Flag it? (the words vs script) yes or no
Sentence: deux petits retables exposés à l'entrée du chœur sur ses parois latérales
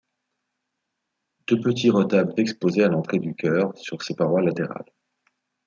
no